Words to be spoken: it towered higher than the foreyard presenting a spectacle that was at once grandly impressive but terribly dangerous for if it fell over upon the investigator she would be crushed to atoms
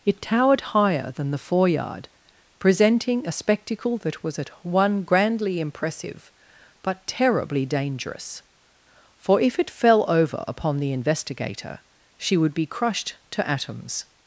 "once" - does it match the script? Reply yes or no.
no